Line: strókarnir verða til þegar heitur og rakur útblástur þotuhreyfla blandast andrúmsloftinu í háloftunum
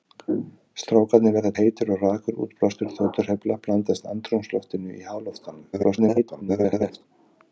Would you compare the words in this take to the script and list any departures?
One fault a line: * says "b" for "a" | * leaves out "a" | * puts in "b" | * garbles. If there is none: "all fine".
* leaves out "til þegar"
* garbles